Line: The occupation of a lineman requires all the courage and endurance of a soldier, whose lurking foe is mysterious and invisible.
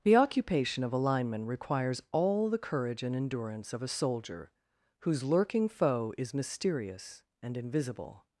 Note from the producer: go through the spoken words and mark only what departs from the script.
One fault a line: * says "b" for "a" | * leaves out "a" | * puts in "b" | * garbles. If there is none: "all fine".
all fine